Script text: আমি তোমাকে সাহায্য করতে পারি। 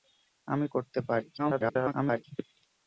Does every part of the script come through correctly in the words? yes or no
no